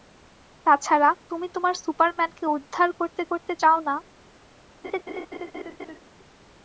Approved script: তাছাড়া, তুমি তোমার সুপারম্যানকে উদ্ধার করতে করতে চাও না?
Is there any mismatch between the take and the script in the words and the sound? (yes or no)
yes